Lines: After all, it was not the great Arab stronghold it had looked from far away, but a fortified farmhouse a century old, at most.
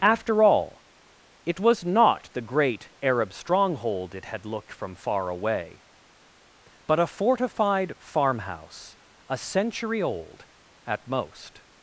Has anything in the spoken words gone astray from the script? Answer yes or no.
no